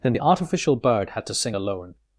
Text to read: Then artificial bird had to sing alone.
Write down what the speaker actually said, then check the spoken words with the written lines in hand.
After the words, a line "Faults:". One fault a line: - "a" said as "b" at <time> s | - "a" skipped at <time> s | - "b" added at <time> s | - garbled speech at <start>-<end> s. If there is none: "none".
Then the artificial bird had to sing alone.
Faults:
- "the" added at 0.1 s